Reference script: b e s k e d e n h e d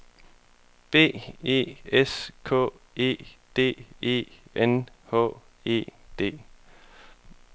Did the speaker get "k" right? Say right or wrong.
right